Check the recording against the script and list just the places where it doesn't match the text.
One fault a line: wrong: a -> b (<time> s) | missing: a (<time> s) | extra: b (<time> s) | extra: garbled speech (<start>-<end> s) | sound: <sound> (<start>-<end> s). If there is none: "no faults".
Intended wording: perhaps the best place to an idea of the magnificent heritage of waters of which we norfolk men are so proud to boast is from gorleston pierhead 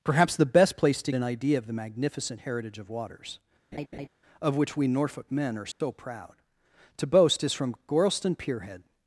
sound: laugh (3.7-4.1 s)
sound: dropout (5.7-5.8 s)